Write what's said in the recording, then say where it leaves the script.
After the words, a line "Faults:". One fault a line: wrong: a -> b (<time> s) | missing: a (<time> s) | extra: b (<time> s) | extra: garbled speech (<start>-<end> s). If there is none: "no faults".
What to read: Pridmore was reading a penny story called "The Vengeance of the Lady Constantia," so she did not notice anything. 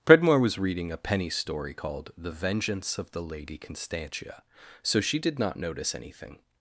Pridmore was reading a penny story called "The Vengeance of the Lady Constantia," so she did not notice anything.
Faults:
no faults